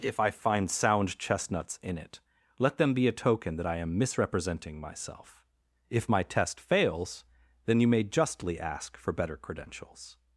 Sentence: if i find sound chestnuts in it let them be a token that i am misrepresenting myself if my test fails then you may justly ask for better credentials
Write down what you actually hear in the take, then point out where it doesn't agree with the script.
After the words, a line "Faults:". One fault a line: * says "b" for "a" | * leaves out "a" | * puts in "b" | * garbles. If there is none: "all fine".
if i find sound chestnuts in it let them be a token that i am misrepresenting myself if my test fails then you may justly ask for better credentials
Faults:
all fine